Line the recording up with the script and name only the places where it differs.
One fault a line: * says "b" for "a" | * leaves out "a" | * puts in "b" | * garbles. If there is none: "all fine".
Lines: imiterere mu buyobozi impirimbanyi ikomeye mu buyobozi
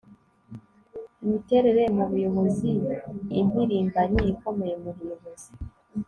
all fine